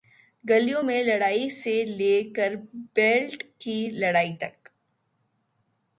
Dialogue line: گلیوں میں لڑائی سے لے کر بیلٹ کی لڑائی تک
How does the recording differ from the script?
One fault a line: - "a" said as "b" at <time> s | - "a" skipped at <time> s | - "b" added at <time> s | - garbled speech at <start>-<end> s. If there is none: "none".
none